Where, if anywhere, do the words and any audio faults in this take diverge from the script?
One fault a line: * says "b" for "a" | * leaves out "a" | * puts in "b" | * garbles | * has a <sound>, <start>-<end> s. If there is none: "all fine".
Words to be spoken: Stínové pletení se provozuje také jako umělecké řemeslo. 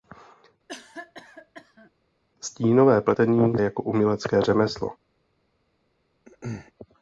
* has a cough, 0.7-1.9 s
* leaves out "se provozuje také"
* has a throat clearing, 6.3-6.7 s